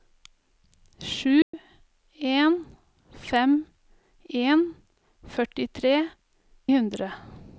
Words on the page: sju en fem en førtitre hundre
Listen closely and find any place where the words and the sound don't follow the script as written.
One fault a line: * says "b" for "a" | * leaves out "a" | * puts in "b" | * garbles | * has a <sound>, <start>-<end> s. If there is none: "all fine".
* has a dropout, 1.4-1.5 s